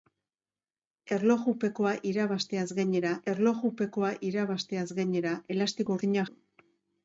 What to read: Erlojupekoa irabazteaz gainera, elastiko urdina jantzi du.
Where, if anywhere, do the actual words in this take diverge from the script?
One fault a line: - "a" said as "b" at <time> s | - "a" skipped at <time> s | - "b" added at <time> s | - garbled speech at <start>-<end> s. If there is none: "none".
- "erlojupekoa irabazteaz gainera" added at 3.3 s
- "jantzi" skipped at 6.3 s